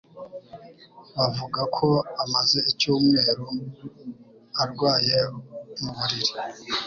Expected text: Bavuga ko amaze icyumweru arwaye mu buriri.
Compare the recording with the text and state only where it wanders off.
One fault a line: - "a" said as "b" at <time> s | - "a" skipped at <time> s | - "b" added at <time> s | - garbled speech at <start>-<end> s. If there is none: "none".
none